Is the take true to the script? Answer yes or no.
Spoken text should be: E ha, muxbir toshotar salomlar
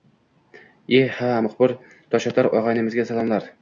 no